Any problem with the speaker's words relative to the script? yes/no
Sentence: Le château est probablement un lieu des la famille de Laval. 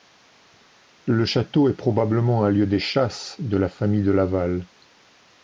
yes